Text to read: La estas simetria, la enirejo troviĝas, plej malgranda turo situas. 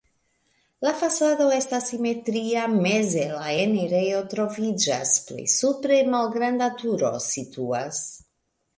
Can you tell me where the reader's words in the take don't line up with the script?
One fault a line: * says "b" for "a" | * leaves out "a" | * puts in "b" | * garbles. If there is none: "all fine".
* puts in "fasado"
* puts in "meze"
* puts in "supre"